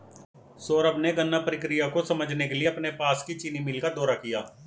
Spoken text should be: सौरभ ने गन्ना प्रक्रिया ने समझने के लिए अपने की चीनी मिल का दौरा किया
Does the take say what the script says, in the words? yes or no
no